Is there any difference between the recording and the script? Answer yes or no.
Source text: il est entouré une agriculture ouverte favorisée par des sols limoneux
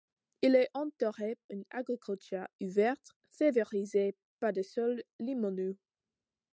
no